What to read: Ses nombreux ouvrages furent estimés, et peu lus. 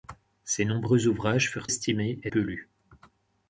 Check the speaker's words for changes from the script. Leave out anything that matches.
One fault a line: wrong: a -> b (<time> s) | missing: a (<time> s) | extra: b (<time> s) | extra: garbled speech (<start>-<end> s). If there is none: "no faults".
no faults